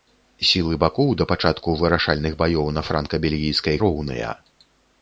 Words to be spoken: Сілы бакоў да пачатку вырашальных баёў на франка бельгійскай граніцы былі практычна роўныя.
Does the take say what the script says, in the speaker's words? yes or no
no